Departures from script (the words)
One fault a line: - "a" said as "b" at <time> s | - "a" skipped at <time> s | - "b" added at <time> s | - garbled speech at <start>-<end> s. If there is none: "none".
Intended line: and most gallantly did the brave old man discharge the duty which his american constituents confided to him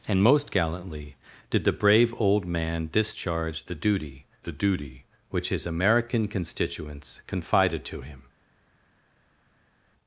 - "the duty" added at 4.4 s